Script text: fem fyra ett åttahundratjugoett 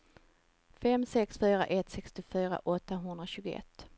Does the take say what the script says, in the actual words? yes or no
no